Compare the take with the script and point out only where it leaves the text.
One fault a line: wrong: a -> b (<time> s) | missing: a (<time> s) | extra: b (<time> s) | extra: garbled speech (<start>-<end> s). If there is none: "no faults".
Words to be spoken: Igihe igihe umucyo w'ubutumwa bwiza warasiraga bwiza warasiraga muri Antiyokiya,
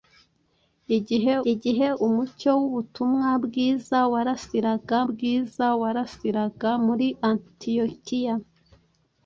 no faults